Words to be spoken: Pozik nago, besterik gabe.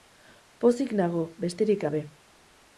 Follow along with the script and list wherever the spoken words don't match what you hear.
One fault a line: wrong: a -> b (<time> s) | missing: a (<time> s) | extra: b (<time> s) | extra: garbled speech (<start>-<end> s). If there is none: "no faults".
no faults